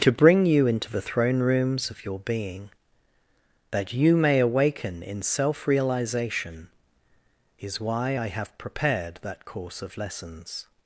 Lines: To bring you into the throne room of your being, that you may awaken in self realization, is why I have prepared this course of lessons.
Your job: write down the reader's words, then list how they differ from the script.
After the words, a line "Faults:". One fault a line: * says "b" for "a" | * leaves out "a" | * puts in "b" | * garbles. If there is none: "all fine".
To bring you into the throne rooms of your being, that you may awaken in self realization, is why I have prepared that course of lessons.
Faults:
* says "rooms" for "room"
* says "that" for "this"